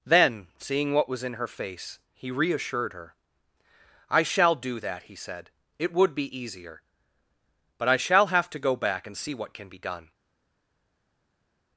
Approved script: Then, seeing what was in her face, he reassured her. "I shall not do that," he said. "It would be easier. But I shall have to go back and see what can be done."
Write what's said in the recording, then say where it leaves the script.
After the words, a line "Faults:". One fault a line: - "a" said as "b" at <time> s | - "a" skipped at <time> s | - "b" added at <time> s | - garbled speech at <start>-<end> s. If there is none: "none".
Then, seeing what was in her face, he reassured her. "I shall do that," he said. "It would be easier. But I shall have to go back and see what can be done."
Faults:
- "not" skipped at 4.5 s